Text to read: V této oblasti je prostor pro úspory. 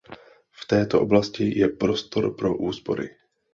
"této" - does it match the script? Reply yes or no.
yes